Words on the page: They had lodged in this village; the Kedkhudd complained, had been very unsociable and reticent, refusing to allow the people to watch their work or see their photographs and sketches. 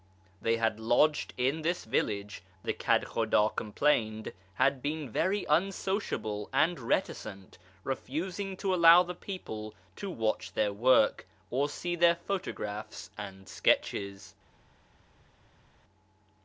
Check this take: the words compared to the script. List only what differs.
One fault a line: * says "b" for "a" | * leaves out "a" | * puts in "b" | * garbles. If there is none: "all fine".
all fine